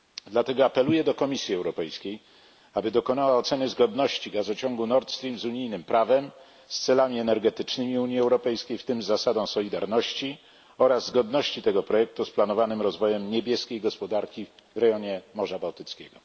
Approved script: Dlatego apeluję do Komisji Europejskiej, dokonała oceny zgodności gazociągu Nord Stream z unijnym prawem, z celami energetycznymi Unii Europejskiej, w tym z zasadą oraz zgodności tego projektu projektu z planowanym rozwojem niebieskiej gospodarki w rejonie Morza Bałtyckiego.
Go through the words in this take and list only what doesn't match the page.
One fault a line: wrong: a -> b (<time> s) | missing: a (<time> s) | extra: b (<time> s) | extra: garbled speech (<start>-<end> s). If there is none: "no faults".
extra: aby (2.7 s)
extra: solidarności (9.5 s)
missing: projektu (12.2 s)